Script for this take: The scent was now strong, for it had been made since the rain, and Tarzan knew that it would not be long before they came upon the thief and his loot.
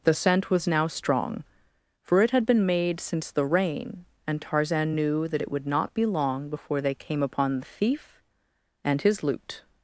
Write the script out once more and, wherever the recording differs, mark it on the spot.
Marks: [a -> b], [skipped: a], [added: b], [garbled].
The scent was now strong, for it had been made since the rain, and Tarzan knew that it would not be long before they came upon the thief and his loot.